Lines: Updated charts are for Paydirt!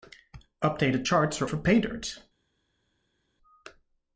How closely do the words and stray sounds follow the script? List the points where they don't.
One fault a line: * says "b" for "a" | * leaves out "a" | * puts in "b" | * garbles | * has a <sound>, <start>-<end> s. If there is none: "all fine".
all fine